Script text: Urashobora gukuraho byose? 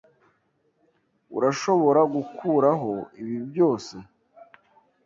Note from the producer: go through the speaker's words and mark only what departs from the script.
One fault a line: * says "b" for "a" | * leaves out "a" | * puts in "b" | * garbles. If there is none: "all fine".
* puts in "ibi"